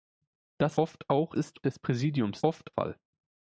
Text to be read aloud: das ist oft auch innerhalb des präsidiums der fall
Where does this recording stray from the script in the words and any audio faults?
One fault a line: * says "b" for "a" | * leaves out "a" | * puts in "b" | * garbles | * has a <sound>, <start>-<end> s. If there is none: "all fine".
* leaves out "ist"
* says "ist" for "innerhalb"
* says "oft" for "der"